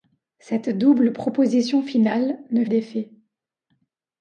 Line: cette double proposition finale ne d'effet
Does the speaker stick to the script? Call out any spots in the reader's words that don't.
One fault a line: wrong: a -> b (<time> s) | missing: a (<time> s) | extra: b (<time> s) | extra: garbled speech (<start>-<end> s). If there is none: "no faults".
no faults